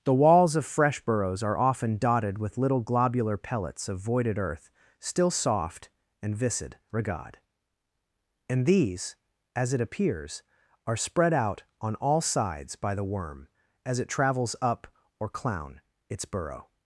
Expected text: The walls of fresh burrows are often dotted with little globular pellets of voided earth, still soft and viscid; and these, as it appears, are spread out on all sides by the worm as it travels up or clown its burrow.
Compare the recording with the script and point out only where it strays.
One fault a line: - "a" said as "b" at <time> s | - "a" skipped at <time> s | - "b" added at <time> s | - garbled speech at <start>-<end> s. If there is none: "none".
- "regard" added at 6.9 s